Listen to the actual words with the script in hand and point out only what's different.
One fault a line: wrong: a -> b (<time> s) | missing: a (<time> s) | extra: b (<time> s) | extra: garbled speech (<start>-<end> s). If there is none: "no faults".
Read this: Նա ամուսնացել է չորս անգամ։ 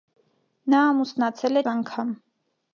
missing: չորս (1.6 s)